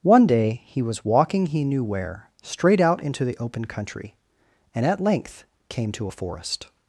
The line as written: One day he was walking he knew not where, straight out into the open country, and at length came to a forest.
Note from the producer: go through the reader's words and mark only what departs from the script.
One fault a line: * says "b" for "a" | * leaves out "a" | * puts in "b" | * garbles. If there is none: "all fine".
* leaves out "not"